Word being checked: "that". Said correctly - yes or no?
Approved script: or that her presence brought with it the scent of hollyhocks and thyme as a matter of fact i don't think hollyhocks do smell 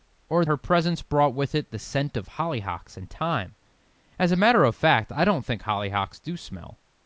no